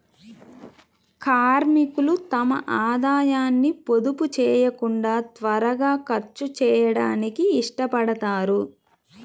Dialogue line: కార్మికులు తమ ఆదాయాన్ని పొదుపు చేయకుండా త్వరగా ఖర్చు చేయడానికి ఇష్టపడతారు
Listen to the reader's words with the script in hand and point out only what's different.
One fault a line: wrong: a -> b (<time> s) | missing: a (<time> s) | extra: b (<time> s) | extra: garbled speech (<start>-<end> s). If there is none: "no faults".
no faults